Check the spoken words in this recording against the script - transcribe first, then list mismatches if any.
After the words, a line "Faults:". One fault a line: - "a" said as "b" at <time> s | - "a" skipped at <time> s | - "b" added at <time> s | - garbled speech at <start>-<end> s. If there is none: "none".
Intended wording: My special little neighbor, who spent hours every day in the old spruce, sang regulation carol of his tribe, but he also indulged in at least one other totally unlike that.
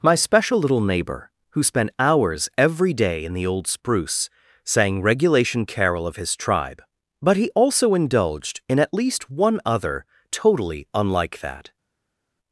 My special little neighbor, who spent hours every day in the old spruce, sang regulation carol of his tribe, but he also indulged in at least one other totally unlike that.
Faults:
none